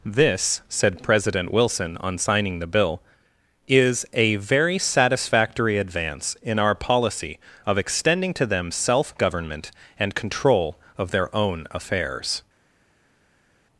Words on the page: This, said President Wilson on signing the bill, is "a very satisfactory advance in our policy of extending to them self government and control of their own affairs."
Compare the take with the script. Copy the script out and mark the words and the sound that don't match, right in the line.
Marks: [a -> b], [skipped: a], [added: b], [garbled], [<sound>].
This, said President Wilson on signing the bill, is "a very satisfactory advance in our policy of extending to them self government and control of their own affairs."